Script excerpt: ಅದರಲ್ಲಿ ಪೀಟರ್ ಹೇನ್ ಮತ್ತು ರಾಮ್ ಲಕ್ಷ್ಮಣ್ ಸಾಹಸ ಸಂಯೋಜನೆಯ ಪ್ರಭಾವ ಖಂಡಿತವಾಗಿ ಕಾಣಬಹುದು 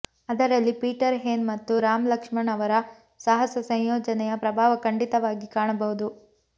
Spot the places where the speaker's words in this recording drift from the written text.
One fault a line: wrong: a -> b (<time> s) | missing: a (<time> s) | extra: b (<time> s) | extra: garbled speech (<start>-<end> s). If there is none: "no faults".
extra: ಅವರ (2.5 s)